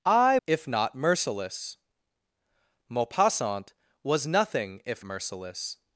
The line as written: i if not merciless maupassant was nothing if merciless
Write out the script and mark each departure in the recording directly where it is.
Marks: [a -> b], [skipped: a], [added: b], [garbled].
i if not merciless maupassant was nothing if merciless